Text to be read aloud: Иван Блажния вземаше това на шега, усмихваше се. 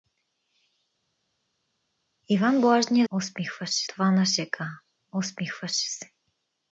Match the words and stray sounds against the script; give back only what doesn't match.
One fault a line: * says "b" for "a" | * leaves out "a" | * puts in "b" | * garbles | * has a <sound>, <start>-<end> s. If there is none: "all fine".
* says "усмихваше" for "вземаше"